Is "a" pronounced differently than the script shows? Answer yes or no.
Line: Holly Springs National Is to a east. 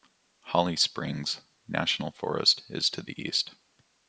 yes